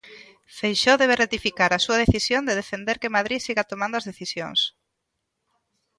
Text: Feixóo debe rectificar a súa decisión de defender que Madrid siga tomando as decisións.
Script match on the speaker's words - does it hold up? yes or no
yes